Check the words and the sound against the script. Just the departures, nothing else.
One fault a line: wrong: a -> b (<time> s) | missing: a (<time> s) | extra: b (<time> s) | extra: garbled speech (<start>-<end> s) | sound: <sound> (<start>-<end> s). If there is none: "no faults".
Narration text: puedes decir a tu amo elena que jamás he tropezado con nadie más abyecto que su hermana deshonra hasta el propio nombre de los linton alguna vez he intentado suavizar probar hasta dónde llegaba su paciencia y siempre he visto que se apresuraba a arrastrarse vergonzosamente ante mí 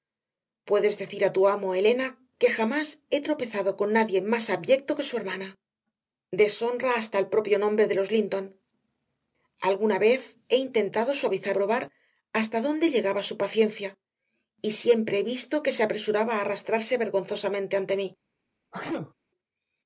sound: sneeze (18.7-19.1 s)